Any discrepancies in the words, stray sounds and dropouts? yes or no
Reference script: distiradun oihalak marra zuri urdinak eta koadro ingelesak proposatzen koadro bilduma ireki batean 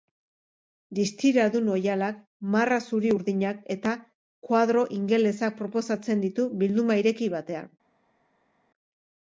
yes